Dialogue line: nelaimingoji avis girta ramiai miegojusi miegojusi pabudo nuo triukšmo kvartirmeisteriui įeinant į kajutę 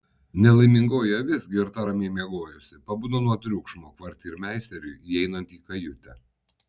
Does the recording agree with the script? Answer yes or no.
no